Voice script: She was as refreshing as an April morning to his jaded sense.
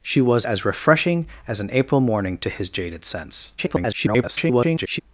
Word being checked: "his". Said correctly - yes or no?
yes